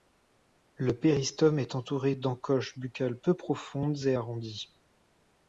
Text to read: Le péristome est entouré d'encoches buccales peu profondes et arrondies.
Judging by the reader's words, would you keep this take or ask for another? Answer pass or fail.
pass